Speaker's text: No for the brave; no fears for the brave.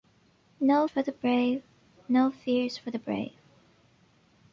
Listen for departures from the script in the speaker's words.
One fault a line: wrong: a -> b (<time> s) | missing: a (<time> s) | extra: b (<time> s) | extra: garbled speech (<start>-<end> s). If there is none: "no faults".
no faults